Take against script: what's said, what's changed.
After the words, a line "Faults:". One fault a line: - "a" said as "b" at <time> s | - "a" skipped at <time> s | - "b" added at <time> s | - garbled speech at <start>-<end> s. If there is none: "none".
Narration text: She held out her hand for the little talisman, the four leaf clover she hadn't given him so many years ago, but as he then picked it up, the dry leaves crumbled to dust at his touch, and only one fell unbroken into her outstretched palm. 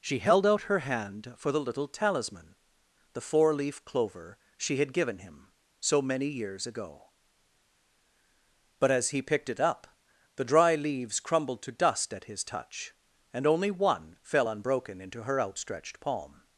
She held out her hand for the little talisman, the four leaf clover she had given him so many years ago, but as he picked it up, the dry leaves crumbled to dust at his touch, and only one fell unbroken into her outstretched palm.
Faults:
- "hadn't" said as "had" at 4.8 s
- "then" skipped at 9.2 s